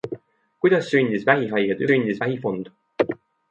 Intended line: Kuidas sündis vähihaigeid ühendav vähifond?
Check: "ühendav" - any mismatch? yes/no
yes